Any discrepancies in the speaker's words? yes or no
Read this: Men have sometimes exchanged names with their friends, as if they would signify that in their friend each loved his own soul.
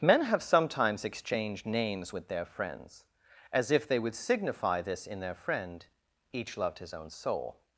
yes